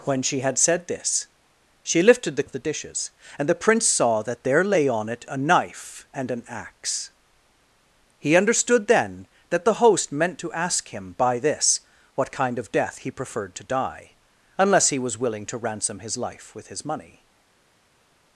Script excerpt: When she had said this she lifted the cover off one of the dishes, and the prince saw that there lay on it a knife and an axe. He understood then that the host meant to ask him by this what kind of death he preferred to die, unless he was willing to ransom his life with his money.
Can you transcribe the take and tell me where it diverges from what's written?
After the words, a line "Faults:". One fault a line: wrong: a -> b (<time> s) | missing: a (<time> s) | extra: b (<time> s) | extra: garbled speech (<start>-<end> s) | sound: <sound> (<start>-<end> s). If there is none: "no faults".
When she had said this she lifted the of the dishes, and the prince saw that there lay on it a knife and an axe. He understood then that the host meant to ask him by this what kind of death he preferred to die, unless he was willing to ransom his life with his money.
Faults:
missing: cover off one (2.5 s)